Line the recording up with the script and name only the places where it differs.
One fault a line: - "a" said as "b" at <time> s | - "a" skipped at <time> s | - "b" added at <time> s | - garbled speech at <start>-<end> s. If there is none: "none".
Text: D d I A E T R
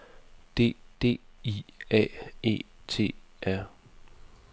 none